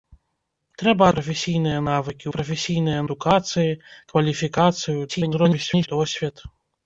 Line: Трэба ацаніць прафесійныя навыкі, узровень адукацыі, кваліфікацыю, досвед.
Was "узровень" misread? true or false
true